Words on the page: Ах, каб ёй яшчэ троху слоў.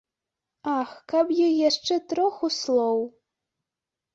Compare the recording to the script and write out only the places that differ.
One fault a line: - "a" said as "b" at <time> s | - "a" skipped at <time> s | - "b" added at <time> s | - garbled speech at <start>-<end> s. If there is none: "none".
none